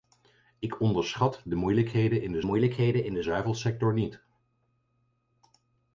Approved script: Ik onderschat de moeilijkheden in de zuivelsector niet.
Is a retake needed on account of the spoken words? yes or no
yes